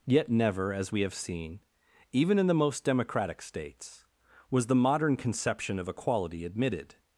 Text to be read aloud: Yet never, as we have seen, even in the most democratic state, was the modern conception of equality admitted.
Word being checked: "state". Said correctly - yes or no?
no